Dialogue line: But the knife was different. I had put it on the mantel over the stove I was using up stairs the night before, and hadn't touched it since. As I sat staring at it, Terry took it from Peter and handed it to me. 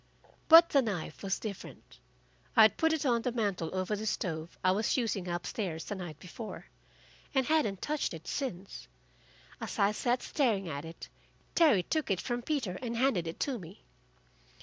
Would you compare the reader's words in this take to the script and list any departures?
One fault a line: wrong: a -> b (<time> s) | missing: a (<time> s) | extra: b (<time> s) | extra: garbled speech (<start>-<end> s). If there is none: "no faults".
no faults